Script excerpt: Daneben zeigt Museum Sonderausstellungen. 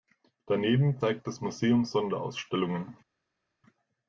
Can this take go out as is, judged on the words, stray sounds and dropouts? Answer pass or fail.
fail